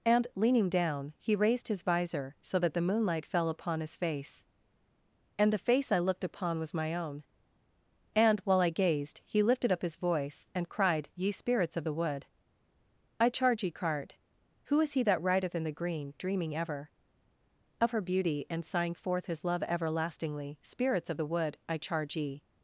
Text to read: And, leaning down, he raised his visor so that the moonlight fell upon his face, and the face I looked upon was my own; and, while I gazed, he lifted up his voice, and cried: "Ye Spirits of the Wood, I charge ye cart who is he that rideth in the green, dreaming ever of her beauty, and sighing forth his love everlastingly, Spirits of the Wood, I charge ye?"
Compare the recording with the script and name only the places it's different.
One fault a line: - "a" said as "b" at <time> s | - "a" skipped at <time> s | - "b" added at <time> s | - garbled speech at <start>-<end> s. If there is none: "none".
none